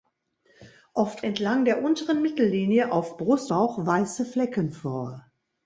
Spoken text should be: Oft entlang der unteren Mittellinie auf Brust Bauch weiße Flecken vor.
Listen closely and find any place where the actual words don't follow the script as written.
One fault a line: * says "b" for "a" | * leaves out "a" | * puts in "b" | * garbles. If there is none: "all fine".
all fine